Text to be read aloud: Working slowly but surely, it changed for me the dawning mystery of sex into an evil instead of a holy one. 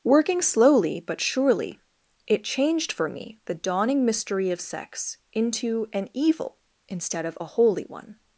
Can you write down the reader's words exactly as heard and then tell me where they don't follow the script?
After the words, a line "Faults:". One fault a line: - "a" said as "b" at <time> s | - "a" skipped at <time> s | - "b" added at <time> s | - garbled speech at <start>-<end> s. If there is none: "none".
Working slowly but surely, it changed for me the dawning mystery of sex into an evil instead of a holy one.
Faults:
none